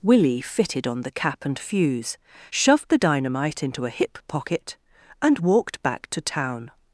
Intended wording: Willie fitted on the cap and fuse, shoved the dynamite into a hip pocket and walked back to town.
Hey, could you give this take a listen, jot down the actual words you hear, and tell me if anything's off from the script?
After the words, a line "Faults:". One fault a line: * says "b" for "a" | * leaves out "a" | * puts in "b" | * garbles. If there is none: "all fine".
Willie fitted on the cap and fuse, shoved the dynamite into a hip pocket and walked back to town.
Faults:
all fine